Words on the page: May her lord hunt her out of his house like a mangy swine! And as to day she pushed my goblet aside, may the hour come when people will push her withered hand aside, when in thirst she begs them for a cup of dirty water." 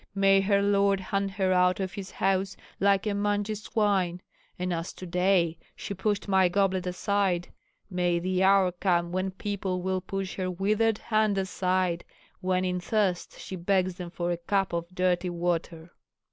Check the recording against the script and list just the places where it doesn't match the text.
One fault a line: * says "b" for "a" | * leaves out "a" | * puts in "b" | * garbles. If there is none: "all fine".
all fine